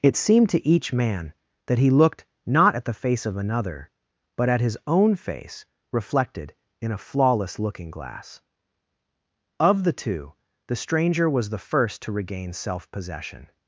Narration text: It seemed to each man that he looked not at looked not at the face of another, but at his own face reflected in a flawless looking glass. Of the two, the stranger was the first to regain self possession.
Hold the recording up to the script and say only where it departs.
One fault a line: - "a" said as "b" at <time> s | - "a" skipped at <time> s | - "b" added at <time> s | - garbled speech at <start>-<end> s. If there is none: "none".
- "looked not at" skipped at 2.8 s